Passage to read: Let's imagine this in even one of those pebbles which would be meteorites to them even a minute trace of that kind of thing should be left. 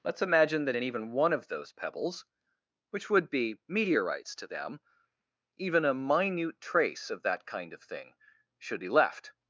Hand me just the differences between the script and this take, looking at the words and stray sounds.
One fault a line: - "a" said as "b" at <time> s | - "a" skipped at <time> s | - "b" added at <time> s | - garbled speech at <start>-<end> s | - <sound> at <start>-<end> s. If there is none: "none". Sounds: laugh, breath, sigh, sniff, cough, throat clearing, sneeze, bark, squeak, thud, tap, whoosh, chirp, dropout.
- "this" said as "that" at 0.7 s